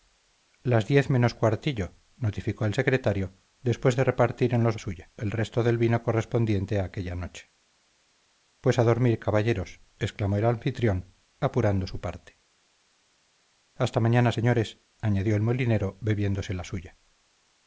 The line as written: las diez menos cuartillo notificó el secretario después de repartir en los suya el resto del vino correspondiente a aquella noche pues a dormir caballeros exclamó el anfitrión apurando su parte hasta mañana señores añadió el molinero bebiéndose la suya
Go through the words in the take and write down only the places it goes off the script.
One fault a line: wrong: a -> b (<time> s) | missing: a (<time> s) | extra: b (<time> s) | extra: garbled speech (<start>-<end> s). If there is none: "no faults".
no faults